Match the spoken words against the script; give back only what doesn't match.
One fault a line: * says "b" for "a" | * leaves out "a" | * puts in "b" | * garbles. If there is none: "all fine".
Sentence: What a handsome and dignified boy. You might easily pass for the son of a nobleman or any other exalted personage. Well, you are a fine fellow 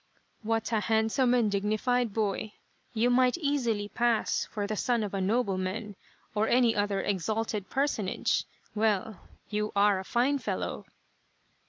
all fine